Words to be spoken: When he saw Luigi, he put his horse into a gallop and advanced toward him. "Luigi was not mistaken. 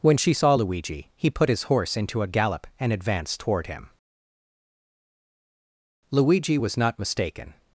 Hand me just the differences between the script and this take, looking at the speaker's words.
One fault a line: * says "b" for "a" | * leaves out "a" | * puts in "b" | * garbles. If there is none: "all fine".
* says "she" for "he"